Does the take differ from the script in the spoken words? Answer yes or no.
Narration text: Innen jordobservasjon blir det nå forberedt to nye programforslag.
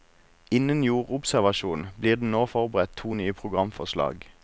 no